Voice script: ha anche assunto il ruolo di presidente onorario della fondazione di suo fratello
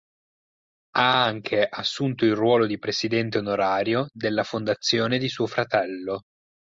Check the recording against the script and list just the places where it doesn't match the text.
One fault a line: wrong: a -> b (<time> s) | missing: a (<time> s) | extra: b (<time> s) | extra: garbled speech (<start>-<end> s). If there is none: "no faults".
no faults